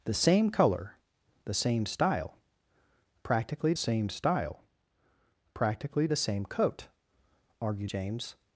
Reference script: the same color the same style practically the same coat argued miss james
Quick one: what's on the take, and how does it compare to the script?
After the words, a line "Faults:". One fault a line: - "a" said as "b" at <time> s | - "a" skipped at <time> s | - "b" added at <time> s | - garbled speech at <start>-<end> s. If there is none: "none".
the same color the same style practically same style practically the same coat argued james
Faults:
- "same style practically" added at 3.7 s
- "miss" skipped at 7.9 s